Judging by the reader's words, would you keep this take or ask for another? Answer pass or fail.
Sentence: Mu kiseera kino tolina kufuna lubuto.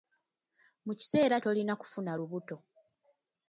fail